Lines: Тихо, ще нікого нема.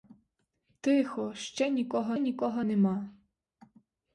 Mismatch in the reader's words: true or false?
true